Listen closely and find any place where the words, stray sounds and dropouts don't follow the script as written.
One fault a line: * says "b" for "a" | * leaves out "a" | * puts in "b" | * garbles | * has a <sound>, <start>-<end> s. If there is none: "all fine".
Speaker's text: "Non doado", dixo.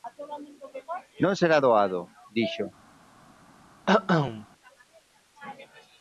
* puts in "será"
* has a cough, 3.9-4.5 s